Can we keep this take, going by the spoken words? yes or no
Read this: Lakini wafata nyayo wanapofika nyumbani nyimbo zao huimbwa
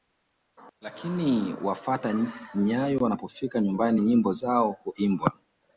yes